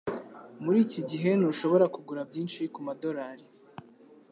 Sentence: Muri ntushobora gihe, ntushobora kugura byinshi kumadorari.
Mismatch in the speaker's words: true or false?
true